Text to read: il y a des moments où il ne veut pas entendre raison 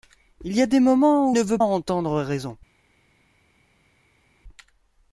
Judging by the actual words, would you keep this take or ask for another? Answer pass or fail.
fail